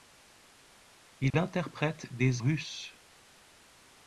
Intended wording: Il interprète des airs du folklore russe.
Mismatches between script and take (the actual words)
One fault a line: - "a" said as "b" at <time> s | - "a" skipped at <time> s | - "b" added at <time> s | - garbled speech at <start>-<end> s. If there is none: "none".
- "airs du folklore" skipped at 2.4 s